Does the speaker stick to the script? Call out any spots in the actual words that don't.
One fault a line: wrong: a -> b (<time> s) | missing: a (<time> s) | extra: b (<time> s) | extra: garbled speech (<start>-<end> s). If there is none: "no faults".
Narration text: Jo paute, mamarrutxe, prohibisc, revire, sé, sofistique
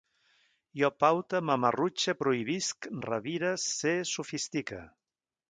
no faults